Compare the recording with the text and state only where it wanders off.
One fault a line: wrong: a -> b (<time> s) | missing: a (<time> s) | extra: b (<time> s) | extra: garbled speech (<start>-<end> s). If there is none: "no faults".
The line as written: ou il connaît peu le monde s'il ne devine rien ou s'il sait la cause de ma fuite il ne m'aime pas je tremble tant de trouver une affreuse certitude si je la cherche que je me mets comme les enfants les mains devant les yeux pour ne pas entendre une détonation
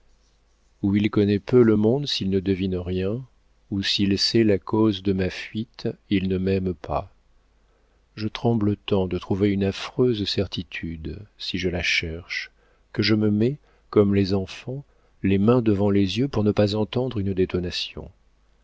no faults